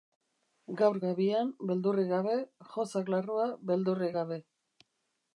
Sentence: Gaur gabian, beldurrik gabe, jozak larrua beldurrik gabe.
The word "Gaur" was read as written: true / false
true